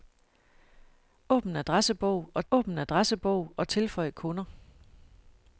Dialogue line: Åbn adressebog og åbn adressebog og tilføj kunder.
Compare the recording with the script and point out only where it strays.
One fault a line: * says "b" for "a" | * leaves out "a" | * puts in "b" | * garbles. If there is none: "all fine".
all fine